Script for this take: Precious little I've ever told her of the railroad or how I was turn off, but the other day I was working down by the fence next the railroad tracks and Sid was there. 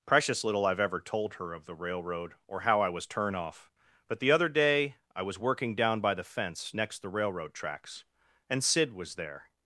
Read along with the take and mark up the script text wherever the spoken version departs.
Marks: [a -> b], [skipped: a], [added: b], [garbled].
Precious little I've ever told her of the railroad or how I was turn off, but the other day I was working down by the fence next the railroad tracks and Sid was there.